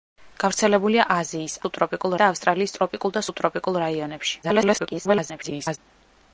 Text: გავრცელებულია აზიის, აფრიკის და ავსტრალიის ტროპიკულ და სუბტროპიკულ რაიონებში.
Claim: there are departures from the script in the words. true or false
true